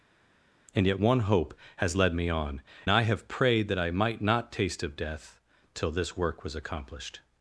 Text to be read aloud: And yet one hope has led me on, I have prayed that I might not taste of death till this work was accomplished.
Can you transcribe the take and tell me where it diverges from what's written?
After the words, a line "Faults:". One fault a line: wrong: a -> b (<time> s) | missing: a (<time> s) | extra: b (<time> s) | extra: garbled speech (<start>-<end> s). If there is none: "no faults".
And yet one hope has led me on, I have prayed that I might not taste of death till this work was accomplished.
Faults:
no faults